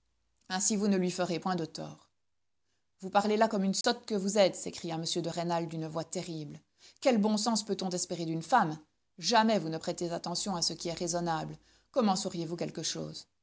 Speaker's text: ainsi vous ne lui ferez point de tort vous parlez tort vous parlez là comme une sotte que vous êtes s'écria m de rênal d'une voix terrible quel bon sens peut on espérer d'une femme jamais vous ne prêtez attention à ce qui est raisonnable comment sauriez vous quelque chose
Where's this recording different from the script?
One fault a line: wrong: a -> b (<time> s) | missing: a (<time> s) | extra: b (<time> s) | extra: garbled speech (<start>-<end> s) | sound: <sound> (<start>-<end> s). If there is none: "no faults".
missing: tort vous parlez (3.4 s)
sound: dropout (3.8-3.8 s)